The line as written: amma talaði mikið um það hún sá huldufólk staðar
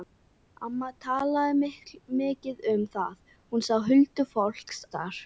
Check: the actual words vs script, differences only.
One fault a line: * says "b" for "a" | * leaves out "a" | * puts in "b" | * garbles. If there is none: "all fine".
all fine